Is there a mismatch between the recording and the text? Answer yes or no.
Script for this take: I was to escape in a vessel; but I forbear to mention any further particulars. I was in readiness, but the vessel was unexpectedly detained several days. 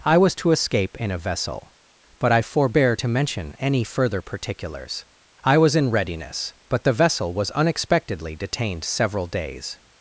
no